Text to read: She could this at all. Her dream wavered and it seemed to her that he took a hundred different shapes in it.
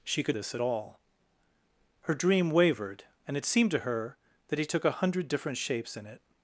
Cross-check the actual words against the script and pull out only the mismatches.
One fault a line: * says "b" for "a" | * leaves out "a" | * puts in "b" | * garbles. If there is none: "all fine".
all fine